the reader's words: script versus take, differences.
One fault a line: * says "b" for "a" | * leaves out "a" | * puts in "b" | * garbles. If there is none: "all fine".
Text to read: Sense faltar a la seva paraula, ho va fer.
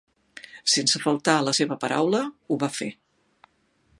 all fine